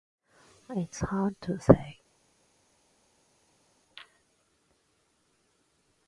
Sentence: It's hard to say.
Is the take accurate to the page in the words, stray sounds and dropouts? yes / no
yes